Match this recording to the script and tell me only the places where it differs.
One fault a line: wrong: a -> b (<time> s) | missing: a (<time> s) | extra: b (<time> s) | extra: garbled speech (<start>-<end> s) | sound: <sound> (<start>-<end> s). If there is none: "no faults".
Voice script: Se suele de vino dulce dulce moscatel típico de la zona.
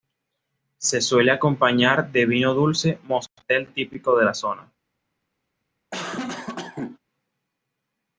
extra: acompañar (1.3 s)
missing: dulce (3.0 s)
sound: cough (5.9-7.0 s)